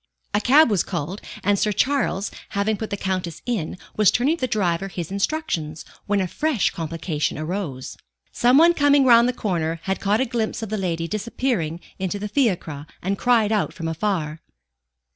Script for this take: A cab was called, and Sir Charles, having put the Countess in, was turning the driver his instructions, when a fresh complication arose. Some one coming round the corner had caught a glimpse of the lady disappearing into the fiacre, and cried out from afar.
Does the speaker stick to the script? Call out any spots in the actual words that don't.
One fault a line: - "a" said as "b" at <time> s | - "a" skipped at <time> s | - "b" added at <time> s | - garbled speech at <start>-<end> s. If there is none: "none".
none